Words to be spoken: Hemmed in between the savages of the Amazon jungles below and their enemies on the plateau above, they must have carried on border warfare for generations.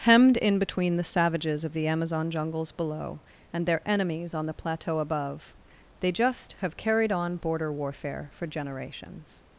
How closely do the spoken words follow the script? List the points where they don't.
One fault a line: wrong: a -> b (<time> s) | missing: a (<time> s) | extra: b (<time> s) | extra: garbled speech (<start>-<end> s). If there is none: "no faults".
wrong: must -> just (6.1 s)